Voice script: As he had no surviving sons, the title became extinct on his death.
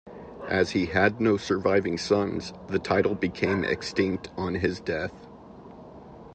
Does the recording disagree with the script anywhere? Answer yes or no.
no